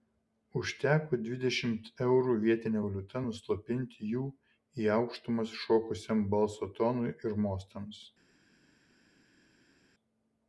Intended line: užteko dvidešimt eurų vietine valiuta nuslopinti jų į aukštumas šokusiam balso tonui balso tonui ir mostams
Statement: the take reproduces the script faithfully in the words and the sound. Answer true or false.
false